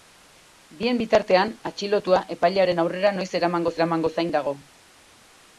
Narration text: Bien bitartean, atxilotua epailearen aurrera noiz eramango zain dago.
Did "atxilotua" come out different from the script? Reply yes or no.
no